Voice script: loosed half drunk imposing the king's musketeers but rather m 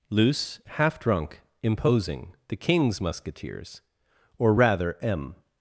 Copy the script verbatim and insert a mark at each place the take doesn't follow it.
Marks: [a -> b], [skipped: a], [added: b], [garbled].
[loosed -> loose] half drunk imposing the king's musketeers [but -> or] rather m